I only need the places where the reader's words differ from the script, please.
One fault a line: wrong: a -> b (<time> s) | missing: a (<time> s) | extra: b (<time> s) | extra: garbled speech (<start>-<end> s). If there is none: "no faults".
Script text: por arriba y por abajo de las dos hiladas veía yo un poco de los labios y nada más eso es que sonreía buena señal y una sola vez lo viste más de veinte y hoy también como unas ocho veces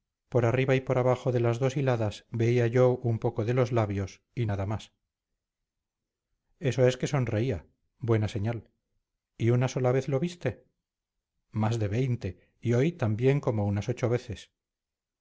no faults